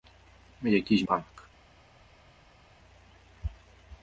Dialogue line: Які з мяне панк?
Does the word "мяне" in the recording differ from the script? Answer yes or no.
yes